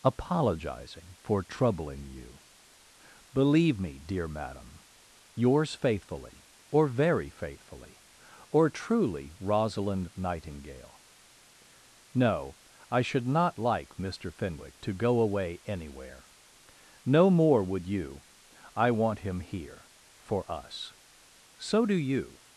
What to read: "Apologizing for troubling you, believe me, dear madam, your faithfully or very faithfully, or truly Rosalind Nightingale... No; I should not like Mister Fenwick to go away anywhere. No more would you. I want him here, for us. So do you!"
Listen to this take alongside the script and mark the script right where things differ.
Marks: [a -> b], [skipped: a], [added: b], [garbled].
"Apologizing for troubling you, believe me, dear madam, [your -> yours] faithfully or very faithfully, or truly Rosalind Nightingale... No; I should not like Mister Fenwick to go away anywhere. No more would you. I want him here, for us. So do you!"